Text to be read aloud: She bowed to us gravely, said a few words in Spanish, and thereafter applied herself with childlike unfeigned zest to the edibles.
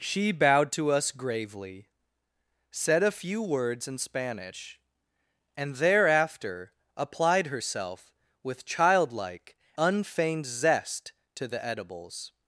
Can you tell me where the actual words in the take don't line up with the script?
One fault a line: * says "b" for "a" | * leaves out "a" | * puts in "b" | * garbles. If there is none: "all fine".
all fine